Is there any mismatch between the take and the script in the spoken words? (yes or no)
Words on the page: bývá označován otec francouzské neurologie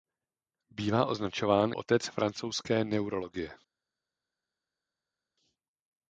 no